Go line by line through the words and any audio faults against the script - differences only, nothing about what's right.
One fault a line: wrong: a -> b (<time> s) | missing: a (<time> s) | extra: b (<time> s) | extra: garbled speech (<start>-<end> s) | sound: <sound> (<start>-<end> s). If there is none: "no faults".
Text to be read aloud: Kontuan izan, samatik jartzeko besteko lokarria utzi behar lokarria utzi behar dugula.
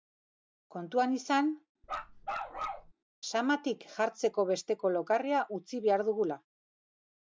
sound: bark (1.8-2.9 s)
missing: lokarria utzi behar (6.1 s)